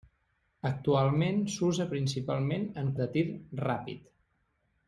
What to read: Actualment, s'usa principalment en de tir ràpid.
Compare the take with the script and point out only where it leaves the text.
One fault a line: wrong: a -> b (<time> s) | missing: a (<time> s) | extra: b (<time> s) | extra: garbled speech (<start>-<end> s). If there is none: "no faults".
no faults